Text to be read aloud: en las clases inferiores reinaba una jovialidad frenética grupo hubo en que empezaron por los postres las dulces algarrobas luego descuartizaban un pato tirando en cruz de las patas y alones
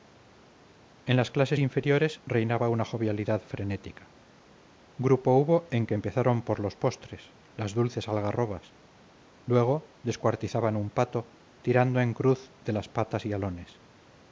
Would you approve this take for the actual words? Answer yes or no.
yes